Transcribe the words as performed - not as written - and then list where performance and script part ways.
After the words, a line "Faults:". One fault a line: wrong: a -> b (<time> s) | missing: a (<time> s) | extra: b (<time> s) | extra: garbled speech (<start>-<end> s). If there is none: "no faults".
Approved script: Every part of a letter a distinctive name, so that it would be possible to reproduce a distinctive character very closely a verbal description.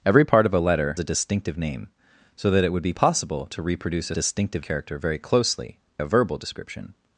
Every part of a letter a distinctive name, so that it would be possible to reproduce a distinctive character very closely a verbal description.
Faults:
no faults